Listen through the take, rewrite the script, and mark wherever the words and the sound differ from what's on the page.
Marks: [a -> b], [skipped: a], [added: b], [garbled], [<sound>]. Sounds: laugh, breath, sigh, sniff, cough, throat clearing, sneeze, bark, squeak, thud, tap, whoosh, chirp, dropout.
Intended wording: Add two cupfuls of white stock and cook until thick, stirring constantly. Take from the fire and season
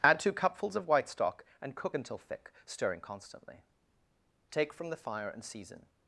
Add two cupfuls of white stock and cook until thick, stirring constantly. Take from the fire and season